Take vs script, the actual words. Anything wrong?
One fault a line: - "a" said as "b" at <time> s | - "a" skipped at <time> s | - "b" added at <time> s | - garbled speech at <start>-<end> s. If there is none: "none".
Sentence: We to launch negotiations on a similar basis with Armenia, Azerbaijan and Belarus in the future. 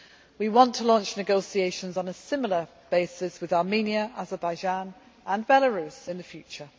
- "want" added at 0.5 s